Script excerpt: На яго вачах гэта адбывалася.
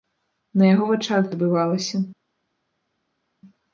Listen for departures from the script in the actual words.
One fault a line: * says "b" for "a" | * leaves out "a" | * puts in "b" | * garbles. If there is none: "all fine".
* leaves out "гэта"